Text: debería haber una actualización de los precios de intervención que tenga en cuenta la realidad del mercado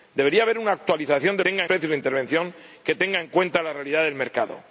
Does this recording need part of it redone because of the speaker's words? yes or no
yes